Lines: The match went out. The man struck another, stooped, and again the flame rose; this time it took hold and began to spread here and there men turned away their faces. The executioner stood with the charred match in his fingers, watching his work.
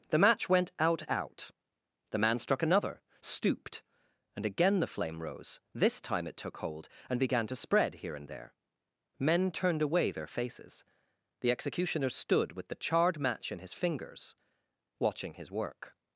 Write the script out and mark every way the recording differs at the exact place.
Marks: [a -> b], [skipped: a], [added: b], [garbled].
The match went out. [added: out] The man struck another, stooped, and again the flame rose; this time it took hold and began to spread here and there men turned away their faces. The executioner stood with the charred match in his fingers, watching his work.